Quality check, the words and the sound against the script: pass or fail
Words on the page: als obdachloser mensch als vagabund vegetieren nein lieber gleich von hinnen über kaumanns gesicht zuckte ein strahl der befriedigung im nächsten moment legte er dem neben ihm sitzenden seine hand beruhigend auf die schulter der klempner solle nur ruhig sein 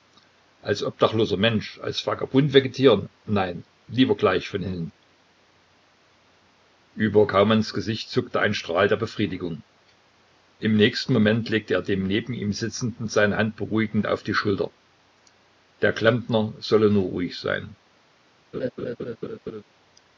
fail